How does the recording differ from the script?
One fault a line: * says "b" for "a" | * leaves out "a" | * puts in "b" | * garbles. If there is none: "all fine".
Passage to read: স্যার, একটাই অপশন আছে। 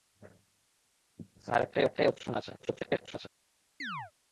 * puts in "একটাই"
* garbles